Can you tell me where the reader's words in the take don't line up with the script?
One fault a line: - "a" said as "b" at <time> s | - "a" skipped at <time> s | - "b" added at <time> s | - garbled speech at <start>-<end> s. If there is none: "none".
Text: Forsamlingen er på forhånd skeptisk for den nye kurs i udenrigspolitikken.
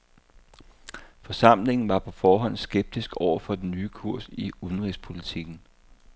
- "er" said as "var" at 1.9 s
- "over" added at 3.2 s